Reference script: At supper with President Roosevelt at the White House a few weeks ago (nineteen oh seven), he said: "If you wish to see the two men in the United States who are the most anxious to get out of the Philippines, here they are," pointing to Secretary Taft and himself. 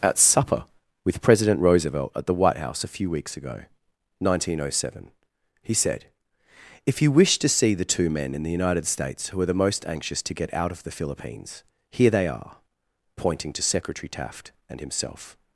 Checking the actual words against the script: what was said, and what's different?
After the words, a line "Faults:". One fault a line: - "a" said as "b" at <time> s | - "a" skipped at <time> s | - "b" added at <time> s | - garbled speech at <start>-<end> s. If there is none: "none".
At supper with President Roosevelt at the White House a few weeks ago (nineteen oh seven), he said: "If you wish to see the two men in the United States who are the most anxious to get out of the Philippines, here they are," pointing to Secretary Taft and himself.
Faults:
none